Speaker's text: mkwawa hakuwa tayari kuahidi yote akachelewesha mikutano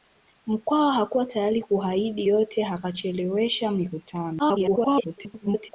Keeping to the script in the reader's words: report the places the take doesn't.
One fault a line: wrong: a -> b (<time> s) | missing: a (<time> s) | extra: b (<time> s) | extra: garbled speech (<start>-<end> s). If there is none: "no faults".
extra: garbled speech (4.4-5.7 s)